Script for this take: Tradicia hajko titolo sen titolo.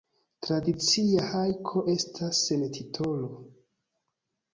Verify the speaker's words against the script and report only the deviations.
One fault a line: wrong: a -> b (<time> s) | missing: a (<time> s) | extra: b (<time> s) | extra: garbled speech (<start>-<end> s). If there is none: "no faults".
wrong: titolo -> estas (1.9 s)